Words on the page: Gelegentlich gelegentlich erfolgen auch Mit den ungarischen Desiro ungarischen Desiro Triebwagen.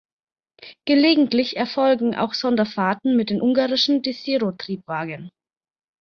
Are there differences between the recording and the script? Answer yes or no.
yes